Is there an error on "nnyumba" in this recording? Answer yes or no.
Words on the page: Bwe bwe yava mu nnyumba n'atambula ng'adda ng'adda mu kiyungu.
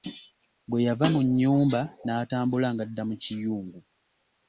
no